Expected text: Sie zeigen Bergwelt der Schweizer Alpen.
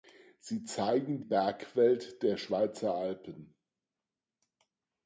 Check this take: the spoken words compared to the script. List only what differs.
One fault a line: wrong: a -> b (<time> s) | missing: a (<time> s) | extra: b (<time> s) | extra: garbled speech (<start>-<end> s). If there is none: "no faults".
no faults